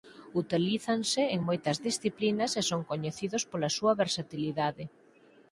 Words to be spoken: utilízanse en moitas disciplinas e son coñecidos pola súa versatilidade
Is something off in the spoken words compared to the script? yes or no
no